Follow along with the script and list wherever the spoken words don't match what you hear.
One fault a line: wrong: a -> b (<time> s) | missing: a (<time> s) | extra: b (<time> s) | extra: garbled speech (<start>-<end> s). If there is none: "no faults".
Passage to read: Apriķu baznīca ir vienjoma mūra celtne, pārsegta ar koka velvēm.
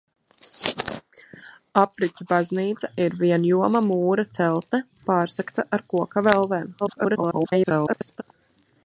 extra: garbled speech (6.8-8.2 s)